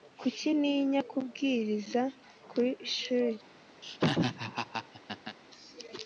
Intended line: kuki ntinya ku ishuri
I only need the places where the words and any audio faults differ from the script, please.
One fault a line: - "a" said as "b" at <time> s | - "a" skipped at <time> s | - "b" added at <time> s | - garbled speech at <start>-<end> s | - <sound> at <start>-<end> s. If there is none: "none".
- "kubwiriza" added at 1.1 s
- laugh at 3.8-5.4 s